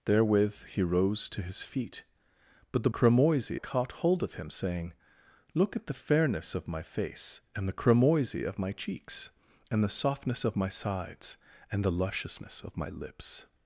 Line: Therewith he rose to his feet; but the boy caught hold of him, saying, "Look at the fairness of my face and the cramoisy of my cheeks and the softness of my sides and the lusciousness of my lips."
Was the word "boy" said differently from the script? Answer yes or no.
yes